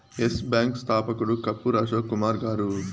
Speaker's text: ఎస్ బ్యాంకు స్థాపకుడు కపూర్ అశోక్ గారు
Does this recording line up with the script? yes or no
no